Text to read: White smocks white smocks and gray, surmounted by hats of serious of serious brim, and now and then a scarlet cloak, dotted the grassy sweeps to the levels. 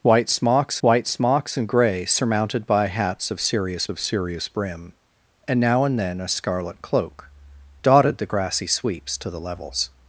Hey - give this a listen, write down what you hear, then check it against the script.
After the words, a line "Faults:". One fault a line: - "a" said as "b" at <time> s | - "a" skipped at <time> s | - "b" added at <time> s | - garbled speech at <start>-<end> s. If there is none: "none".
White smocks white smocks and gray, surmounted by hats of serious of serious brim, and now and then a scarlet cloak, dotted the grassy sweeps to the levels.
Faults:
none